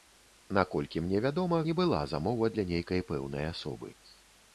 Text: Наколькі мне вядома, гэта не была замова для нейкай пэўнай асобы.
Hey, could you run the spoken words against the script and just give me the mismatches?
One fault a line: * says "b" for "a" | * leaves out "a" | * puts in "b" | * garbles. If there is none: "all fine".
* leaves out "гэта"